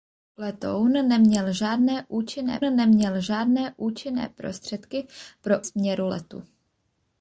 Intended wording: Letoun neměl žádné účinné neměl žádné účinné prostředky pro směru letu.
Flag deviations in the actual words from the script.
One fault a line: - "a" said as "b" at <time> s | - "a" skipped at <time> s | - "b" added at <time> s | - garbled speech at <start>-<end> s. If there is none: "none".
none